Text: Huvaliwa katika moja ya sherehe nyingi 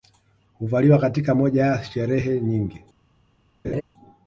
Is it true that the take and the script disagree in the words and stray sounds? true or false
true